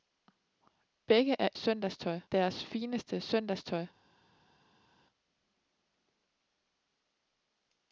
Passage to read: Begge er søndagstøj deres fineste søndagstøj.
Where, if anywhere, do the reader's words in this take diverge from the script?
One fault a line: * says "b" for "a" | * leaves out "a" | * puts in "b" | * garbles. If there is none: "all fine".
all fine